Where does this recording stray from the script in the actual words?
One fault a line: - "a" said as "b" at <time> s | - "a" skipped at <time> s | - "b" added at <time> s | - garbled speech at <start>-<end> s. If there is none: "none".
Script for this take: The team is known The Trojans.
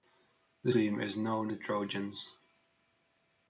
none